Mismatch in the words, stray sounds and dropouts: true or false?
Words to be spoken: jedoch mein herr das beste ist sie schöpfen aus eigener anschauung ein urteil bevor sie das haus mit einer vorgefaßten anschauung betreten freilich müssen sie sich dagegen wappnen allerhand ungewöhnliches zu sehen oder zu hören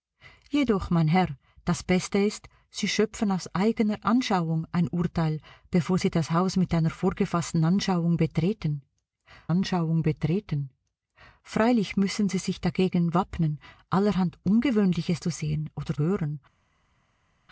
true